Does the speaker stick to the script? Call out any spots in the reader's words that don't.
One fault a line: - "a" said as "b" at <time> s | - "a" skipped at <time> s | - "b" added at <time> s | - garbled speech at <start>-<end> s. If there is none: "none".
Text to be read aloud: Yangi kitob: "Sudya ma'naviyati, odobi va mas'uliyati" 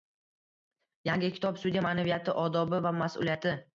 none